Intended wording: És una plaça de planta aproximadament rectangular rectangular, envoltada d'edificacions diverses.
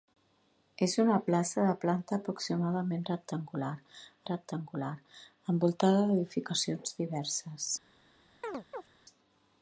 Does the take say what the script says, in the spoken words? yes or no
yes